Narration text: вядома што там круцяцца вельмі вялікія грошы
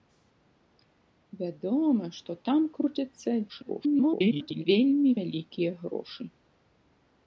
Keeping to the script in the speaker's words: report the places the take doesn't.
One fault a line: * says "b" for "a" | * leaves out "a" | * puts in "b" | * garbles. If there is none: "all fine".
* garbles